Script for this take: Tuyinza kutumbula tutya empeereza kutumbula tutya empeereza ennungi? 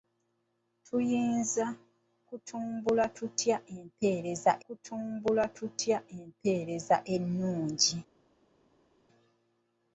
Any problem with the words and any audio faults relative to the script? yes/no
no